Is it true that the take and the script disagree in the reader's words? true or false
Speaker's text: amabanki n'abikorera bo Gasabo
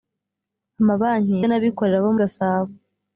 false